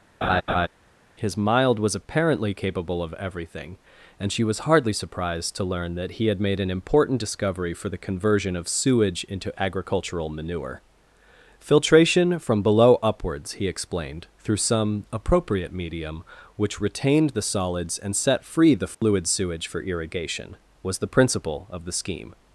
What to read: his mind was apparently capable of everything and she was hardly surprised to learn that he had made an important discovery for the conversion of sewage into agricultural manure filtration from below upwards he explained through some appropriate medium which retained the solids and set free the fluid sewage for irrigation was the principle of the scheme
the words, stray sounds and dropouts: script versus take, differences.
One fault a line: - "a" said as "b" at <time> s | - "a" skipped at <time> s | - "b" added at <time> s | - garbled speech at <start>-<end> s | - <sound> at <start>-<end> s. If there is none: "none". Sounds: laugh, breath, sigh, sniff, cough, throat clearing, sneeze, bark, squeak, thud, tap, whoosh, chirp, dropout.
- laugh at 0.2-0.7 s
- "mind" said as "mild" at 1.4 s
- dropout at 18.9-19.0 s